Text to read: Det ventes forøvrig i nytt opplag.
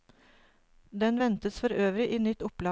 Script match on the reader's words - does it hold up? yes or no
no